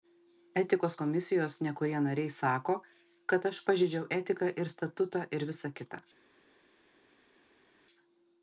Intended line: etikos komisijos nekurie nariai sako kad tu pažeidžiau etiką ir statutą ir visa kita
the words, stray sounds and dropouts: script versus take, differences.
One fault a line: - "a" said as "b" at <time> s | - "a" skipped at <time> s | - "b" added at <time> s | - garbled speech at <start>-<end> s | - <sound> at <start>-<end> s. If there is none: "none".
- "tu" said as "aš" at 3.5 s